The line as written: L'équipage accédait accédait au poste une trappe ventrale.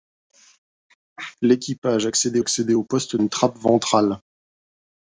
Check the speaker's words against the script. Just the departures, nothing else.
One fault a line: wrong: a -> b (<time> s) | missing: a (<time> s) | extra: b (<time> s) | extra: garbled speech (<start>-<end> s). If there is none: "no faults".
no faults